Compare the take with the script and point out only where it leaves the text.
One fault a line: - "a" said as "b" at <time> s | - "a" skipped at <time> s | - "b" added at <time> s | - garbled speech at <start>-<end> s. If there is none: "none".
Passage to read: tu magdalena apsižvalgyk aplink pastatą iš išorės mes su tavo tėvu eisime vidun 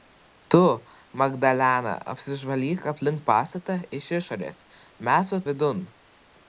- "tavo tėvu eisime" skipped at 5.4 s